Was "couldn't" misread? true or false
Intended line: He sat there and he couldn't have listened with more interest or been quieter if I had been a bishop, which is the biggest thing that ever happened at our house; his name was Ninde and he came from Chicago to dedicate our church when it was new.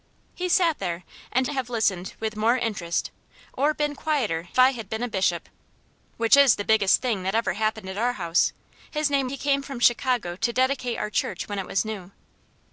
true